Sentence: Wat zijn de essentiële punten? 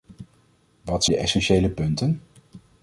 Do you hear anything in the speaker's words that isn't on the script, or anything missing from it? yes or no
yes